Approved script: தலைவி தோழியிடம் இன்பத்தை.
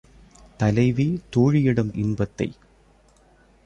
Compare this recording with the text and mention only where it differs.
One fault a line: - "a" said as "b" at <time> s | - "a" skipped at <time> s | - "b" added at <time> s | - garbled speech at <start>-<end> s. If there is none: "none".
none